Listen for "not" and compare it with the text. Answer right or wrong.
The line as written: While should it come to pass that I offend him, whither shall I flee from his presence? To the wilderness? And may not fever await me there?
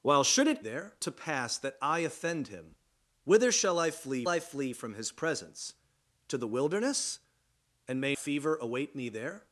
wrong